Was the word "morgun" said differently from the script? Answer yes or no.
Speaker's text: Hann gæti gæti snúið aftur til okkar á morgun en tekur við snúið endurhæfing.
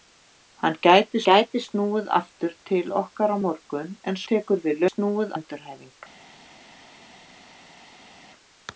no